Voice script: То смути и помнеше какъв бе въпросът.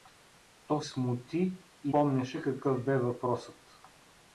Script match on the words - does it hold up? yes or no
yes